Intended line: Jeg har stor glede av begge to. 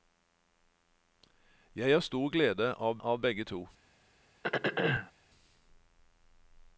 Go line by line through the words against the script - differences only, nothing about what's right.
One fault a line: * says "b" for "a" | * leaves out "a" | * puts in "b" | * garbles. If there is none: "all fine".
* puts in "av"